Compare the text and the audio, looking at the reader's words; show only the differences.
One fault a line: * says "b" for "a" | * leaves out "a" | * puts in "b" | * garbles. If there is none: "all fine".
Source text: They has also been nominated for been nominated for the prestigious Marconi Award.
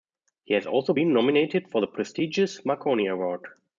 * says "He" for "They"
* leaves out "been nominated for"